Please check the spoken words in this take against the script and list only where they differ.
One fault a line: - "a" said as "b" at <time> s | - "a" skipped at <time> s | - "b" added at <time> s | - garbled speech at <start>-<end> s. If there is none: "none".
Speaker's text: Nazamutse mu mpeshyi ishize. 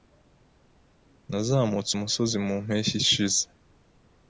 - "umusozi" added at 1.9 s